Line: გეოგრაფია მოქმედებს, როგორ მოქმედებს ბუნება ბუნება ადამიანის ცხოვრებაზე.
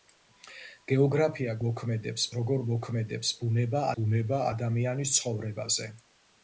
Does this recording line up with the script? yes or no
yes